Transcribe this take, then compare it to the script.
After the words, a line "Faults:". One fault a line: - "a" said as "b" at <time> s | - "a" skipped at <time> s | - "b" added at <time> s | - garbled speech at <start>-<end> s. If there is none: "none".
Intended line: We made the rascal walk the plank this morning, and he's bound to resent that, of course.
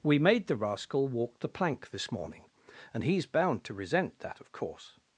We made the rascal walk the plank this morning, and he's bound to resent that, of course.
Faults:
none